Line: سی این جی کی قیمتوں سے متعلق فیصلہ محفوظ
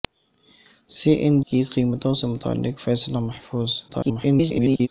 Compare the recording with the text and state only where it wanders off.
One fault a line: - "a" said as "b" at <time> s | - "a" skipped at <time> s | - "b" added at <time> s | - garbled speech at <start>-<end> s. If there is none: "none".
- "جی" skipped at 1.4 s
- garbled speech at 3.9-4.9 s